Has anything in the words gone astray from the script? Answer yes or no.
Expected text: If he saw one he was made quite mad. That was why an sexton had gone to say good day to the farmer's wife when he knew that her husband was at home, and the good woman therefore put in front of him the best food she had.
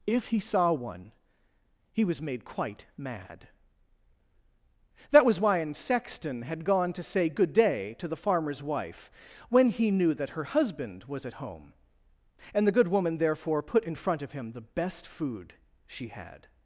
no